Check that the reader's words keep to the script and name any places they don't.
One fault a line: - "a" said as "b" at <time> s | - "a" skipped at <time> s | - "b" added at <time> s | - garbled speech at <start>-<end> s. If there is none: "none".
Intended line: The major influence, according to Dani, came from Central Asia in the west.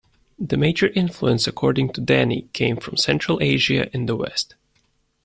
none